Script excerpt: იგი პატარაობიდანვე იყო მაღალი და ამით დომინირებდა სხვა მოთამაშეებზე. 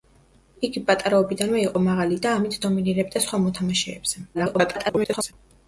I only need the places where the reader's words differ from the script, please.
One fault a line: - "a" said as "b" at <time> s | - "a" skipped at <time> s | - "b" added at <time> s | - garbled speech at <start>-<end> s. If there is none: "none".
- garbled speech at 4.3-5.3 s